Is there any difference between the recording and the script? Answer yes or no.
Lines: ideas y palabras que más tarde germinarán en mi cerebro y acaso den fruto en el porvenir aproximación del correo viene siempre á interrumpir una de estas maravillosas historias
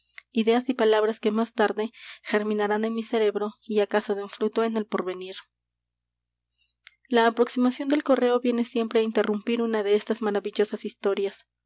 yes